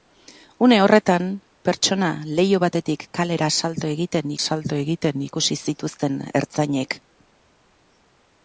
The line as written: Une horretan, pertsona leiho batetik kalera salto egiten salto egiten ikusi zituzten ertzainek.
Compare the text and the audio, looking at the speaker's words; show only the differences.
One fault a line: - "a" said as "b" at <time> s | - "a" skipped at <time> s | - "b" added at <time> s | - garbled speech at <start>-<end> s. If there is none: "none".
none